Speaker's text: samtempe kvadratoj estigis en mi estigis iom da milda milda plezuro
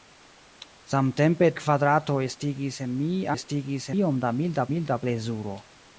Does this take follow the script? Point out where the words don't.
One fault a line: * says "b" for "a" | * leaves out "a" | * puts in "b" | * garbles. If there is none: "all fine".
all fine